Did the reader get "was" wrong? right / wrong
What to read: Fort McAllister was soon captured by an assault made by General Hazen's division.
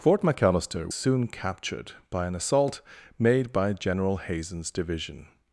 wrong